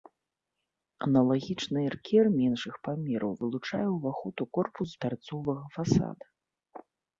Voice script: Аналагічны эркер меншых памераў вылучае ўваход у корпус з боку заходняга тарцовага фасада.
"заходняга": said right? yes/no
no